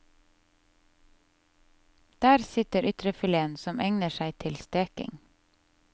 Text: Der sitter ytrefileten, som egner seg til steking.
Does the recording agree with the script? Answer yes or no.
yes